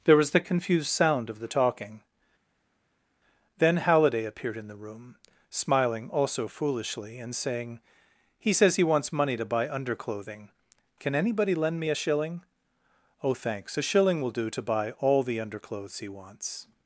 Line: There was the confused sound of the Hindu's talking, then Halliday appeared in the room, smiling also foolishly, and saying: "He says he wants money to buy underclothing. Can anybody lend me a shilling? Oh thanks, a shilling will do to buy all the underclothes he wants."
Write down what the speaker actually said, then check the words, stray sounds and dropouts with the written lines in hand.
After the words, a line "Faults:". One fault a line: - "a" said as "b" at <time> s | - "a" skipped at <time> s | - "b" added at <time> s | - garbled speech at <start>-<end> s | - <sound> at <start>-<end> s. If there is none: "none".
There was the confused sound of the talking, then Halliday appeared in the room, smiling also foolishly, and saying: "He says he wants money to buy underclothing. Can anybody lend me a shilling? Oh thanks, a shilling will do to buy all the underclothes he wants."
Faults:
- "Hindu's" skipped at 1.5 s